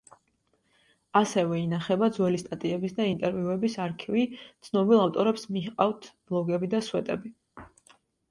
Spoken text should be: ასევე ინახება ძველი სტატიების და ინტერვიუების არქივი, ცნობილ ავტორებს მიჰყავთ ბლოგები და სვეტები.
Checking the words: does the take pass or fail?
pass